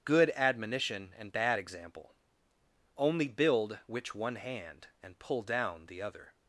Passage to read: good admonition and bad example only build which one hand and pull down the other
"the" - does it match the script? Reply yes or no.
yes